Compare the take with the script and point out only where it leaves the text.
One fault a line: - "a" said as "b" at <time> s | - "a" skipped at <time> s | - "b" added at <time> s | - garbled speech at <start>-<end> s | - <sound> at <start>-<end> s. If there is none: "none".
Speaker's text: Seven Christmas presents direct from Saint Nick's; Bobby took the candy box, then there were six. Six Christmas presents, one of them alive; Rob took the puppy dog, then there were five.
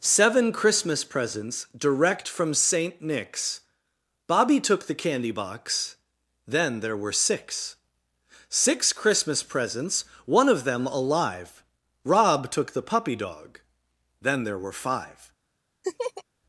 - laugh at 15.8-16.2 s